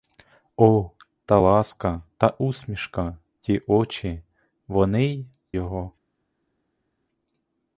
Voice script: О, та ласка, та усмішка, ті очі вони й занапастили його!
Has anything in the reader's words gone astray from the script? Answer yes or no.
yes